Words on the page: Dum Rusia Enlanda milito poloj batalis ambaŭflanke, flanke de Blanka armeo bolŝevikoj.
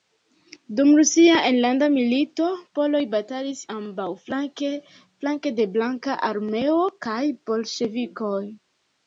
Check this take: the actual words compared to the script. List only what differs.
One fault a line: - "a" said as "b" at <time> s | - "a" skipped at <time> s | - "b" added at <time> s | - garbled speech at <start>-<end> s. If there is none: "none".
- "kaj" added at 7.1 s